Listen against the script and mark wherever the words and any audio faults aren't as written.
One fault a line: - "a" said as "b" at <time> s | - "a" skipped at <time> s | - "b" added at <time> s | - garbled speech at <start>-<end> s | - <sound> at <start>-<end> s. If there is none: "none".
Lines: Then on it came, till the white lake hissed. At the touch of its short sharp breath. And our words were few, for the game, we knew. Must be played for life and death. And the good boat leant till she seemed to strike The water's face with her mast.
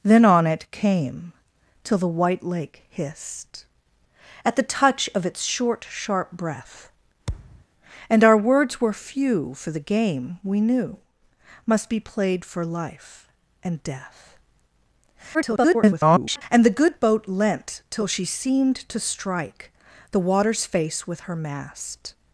- thud at 7.3-7.7 s
- garbled speech at 15.3-16.4 s